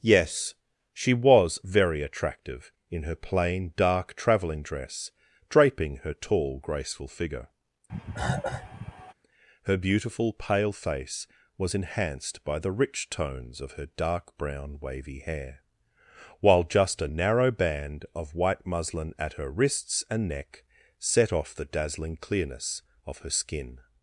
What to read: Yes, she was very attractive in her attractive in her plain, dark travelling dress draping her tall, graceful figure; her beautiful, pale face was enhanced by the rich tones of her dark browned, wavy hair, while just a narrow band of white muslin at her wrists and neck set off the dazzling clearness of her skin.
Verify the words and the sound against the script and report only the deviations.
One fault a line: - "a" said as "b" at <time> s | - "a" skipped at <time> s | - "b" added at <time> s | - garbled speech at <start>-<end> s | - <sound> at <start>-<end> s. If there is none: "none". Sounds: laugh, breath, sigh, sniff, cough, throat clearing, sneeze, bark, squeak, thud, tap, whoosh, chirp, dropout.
- "attractive in her" skipped at 3.1 s
- cough at 7.9-9.1 s
- "browned" said as "brown" at 14.4 s